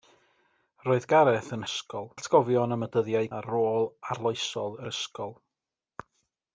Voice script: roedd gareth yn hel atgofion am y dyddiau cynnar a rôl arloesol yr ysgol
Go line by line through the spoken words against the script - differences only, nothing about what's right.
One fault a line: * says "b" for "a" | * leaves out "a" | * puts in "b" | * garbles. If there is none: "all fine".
* says "ysgol" for "hel"
* leaves out "cynnar"